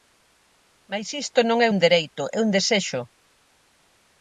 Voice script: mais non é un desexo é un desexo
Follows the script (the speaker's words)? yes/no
no